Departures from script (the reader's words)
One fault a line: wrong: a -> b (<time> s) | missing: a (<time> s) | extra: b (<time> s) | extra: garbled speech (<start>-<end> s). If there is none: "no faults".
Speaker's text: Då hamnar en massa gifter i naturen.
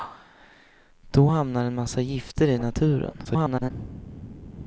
extra: garbled speech (3.2-3.7 s)